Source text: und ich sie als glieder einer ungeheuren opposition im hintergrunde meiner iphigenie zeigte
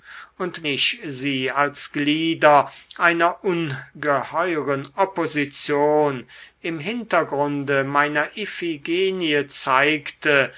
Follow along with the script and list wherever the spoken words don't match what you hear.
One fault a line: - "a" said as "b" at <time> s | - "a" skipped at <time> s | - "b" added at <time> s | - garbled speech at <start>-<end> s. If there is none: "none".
none